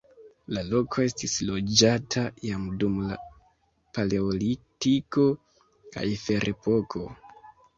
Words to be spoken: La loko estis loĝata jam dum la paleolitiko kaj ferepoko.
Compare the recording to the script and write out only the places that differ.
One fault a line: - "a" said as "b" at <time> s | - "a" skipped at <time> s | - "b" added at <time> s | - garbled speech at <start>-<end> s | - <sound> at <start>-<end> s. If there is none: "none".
none